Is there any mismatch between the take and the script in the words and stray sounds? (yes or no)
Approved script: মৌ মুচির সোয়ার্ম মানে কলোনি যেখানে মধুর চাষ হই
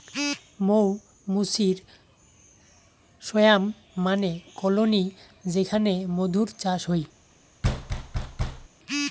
yes